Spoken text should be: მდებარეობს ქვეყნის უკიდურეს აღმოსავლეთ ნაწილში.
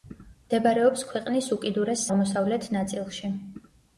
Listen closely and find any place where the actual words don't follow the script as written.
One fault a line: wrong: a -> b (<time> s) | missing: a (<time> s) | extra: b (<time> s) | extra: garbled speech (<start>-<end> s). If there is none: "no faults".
no faults